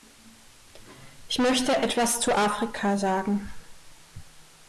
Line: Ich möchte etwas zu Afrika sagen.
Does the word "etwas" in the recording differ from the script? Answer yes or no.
no